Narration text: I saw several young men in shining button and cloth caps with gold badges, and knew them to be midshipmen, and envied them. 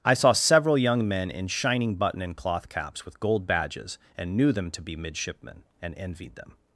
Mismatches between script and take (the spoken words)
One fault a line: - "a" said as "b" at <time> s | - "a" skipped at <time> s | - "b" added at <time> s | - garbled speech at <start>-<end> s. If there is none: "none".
none